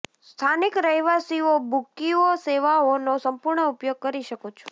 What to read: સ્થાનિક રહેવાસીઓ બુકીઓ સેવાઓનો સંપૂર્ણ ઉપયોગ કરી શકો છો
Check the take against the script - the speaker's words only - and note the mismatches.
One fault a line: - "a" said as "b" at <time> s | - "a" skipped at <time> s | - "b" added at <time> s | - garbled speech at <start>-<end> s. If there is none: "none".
none